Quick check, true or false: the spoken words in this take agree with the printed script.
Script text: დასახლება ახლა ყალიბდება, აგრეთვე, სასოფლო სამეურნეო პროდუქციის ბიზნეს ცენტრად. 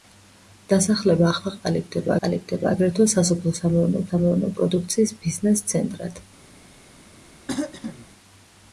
false